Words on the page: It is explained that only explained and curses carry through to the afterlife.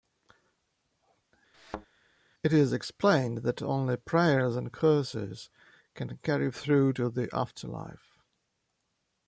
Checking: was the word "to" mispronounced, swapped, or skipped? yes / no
no